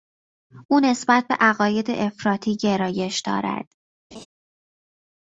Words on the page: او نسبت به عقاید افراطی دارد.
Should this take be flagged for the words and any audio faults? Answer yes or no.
yes